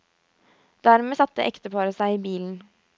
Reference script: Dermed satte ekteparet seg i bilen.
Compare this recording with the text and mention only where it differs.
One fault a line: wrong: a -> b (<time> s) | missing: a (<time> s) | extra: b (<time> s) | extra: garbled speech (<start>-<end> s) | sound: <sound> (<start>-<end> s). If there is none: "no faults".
no faults